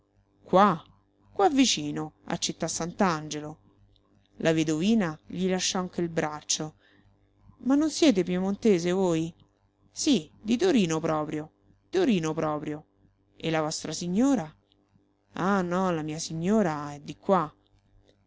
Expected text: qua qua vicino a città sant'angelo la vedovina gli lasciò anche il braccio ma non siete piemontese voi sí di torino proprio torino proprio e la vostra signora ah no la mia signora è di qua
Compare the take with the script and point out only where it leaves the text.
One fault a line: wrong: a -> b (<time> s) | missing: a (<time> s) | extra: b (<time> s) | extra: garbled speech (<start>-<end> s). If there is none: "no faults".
no faults